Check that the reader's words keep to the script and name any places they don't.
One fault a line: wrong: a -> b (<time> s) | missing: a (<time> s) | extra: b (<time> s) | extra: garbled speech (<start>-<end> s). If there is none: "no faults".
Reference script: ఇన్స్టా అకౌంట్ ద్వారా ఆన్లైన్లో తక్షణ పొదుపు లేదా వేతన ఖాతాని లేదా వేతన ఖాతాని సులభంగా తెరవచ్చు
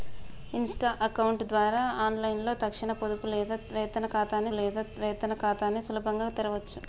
no faults